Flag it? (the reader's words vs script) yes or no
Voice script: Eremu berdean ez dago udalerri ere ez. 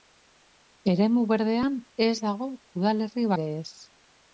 no